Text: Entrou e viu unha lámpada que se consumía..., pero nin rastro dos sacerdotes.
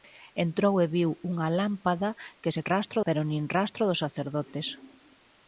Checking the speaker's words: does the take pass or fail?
fail